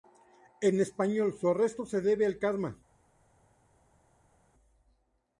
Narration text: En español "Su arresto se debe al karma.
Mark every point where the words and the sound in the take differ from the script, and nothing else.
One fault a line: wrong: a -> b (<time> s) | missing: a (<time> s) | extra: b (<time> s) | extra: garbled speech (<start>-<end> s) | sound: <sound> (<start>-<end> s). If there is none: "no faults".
no faults